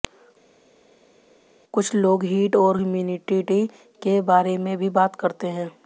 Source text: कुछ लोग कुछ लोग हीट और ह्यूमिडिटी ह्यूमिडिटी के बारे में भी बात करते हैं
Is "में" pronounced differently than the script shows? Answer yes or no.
no